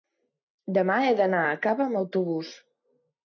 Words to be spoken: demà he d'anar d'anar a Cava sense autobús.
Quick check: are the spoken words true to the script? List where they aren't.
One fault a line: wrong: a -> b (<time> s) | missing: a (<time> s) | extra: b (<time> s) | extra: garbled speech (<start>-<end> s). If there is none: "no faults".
missing: d'anar (1.4 s)
wrong: sense -> amb (1.9 s)